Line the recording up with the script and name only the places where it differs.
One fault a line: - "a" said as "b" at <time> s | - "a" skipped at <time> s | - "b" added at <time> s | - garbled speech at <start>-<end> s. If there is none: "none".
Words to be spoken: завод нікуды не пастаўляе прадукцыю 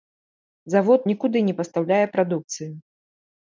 none